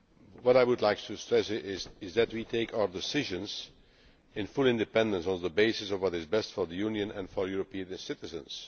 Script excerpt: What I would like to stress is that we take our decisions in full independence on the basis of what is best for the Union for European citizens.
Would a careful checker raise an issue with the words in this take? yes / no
yes